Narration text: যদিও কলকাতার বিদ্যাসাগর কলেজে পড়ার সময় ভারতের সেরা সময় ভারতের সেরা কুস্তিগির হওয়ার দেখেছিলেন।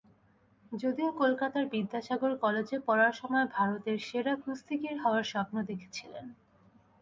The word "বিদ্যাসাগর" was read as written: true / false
true